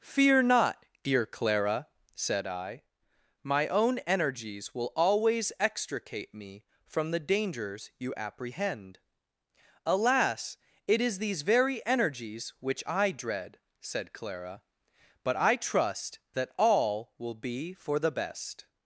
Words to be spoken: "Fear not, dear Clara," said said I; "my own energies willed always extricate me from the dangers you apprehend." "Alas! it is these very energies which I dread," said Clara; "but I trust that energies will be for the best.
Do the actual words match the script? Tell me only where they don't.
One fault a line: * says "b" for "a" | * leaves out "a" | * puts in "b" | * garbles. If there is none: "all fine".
* leaves out "said"
* says "will" for "willed"
* says "all" for "energies"